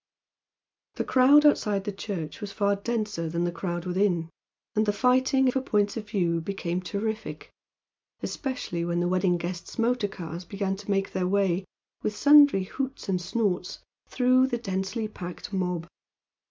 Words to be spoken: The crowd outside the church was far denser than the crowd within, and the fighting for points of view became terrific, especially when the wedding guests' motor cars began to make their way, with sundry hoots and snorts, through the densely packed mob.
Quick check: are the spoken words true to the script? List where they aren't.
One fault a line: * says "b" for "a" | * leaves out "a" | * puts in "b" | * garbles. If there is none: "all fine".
all fine